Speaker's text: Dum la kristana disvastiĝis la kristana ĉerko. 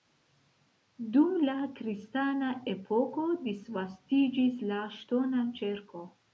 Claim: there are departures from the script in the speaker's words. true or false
true